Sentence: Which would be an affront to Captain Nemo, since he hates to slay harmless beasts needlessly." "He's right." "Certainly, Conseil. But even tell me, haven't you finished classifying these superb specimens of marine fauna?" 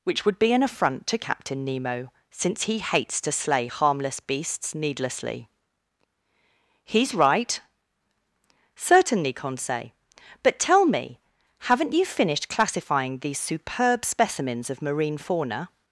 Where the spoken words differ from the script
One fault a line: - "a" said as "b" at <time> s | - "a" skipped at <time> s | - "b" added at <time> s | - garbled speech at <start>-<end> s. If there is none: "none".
- "even" skipped at 10.6 s